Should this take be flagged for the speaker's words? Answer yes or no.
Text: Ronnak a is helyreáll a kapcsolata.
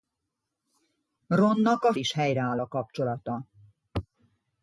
no